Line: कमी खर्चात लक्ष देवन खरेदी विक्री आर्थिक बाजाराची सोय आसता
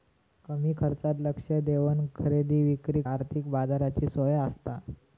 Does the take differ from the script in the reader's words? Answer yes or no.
no